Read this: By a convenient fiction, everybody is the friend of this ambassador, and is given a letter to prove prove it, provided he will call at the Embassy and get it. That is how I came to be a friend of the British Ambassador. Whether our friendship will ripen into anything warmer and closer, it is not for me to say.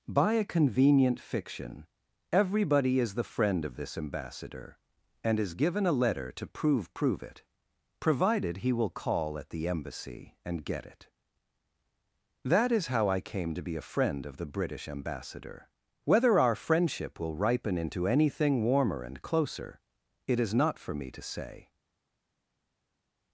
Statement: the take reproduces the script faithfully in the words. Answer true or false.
true